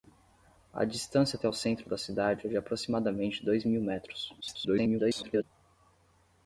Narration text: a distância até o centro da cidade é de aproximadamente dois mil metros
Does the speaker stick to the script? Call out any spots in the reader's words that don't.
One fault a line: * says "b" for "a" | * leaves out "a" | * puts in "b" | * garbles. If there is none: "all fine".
* garbles